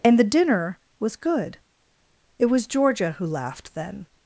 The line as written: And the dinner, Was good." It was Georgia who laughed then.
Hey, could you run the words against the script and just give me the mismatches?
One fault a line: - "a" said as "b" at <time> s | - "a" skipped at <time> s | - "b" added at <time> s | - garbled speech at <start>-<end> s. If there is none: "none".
none